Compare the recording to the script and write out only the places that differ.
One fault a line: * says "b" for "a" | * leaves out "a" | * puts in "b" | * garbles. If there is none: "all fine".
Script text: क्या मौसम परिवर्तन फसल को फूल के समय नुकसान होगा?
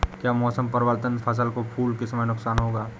all fine